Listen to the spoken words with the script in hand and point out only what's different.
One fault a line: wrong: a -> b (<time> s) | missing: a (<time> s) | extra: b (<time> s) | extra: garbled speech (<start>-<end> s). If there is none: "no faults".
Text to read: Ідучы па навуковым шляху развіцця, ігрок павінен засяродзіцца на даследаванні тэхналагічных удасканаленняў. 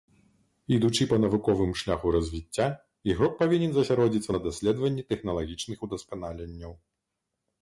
no faults